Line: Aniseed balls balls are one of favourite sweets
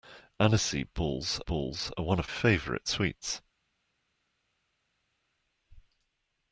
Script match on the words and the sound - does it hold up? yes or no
yes